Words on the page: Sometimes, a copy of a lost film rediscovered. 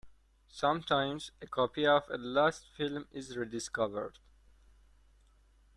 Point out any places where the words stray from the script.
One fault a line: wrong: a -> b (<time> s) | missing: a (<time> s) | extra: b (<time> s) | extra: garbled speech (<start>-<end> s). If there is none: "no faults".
extra: is (3.1 s)